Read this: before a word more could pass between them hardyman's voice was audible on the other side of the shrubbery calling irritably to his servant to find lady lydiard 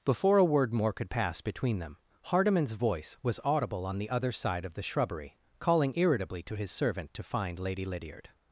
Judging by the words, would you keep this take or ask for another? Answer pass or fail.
pass